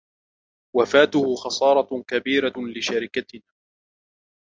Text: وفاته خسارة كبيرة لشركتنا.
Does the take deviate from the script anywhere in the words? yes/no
no